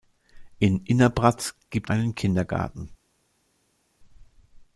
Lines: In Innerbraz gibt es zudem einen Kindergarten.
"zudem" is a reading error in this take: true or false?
true